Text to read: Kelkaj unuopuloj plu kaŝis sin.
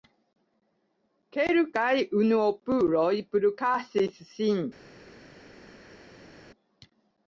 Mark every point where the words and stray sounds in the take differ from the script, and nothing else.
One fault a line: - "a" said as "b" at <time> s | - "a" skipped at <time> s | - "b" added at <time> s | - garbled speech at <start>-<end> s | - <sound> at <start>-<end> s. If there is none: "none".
none